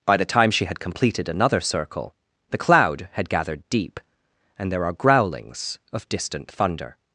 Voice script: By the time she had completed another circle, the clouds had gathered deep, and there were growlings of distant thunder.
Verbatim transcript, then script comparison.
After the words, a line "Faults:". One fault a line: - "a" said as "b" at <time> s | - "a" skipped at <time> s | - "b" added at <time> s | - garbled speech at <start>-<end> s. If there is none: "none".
By the time she had completed another circle, the cloud had gathered deep, and there are growlings of distant thunder.
Faults:
- "clouds" said as "cloud" at 2.5 s
- "were" said as "are" at 4.8 s